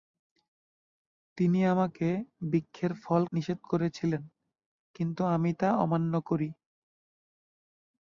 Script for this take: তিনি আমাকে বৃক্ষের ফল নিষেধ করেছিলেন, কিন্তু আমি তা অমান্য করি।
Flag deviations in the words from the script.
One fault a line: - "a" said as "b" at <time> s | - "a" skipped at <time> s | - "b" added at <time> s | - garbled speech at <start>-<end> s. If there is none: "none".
none